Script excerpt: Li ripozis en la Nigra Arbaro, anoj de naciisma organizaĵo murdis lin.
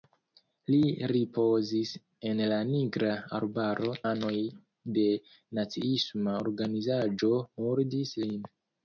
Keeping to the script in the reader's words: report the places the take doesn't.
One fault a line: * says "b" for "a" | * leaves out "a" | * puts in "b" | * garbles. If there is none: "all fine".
all fine